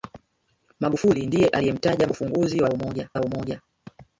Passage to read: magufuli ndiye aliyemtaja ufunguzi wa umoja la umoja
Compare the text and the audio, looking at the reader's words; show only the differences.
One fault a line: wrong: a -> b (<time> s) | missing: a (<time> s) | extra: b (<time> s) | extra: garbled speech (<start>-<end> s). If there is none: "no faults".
no faults